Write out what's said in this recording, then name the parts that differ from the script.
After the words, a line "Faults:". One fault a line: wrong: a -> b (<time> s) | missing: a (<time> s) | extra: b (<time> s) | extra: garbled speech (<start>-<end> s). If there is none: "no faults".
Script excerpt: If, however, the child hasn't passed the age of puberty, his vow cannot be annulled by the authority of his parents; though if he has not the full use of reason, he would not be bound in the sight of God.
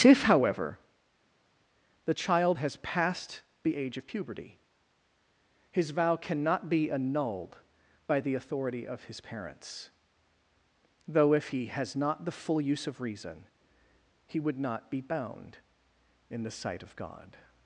If, however, the child has passed the age of puberty, his vow cannot be annulled by the authority of his parents; though if he has not the full use of reason, he would not be bound in the sight of God.
Faults:
wrong: hasn't -> has (2.6 s)